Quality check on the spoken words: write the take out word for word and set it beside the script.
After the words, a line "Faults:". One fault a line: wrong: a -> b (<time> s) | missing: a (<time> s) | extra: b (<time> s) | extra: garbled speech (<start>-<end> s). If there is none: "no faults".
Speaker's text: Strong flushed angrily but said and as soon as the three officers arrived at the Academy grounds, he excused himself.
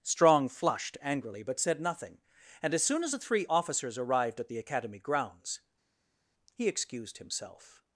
Strong flushed angrily but said nothing, and as soon as the three officers arrived at the Academy grounds, he excused himself.
Faults:
extra: nothing (1.8 s)